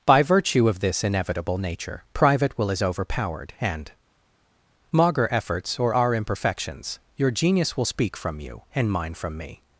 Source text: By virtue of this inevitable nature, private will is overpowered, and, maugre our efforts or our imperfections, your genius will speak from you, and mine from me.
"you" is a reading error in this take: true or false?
false